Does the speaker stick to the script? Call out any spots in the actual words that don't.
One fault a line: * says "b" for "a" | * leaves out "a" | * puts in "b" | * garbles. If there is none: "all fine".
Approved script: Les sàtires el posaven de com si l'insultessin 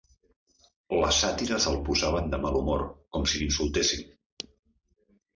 * puts in "mal humor"